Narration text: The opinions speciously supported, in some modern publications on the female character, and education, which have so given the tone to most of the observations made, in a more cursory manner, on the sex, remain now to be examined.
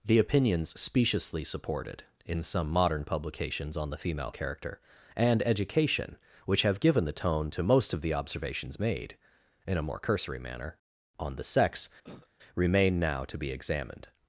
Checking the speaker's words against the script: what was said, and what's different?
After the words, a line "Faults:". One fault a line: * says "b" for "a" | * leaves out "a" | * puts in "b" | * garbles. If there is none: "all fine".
The opinions speciously supported, in some modern publications on the female character, and education, which have given the tone to most of the observations made, in a more cursory manner, on the sex, remain now to be examined.
Faults:
* leaves out "so"